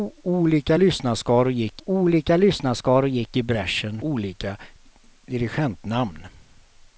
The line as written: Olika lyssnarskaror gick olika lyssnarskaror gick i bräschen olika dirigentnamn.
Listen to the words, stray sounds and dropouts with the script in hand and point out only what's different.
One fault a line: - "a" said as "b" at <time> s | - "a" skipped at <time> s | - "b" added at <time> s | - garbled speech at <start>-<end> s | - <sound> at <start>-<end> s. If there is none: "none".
none